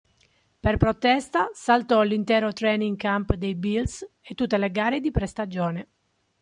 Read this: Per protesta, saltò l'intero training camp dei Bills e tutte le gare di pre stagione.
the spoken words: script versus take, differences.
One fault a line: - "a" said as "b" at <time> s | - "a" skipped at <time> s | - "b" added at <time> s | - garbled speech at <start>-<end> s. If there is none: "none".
none